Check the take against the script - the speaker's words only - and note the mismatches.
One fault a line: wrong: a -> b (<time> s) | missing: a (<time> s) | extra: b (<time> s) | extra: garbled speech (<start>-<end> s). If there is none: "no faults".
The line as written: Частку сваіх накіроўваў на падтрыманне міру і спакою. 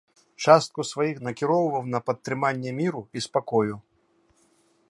no faults